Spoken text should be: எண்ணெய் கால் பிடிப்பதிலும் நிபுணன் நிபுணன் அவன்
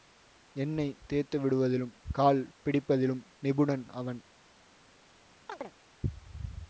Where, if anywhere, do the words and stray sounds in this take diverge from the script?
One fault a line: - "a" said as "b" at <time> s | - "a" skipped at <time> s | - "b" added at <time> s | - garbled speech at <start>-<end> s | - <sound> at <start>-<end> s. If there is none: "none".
- "தேய்த்துவிடுவதிலும்" added at 1.1 s
- "நிபுணன்" skipped at 3.8 s
- chirp at 5.5-5.7 s